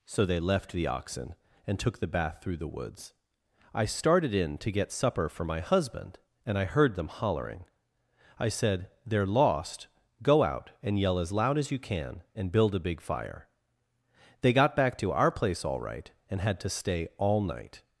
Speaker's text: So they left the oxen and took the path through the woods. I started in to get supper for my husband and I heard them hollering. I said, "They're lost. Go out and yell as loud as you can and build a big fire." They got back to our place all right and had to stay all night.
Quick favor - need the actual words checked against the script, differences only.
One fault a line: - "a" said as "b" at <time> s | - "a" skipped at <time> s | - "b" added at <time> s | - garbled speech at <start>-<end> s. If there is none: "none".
- "path" said as "bath" at 2.1 s